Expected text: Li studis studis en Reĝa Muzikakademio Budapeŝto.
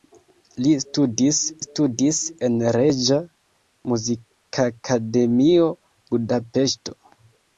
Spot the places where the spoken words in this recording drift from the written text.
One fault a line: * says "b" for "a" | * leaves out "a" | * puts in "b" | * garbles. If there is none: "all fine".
all fine